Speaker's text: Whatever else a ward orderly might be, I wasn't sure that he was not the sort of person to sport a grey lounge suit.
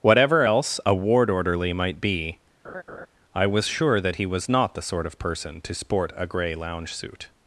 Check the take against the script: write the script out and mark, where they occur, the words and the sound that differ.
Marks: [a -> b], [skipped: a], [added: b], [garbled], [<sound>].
Whatever else a ward orderly might be, [laugh] I [wasn't -> was] sure that he was not the sort of person to sport a grey lounge suit.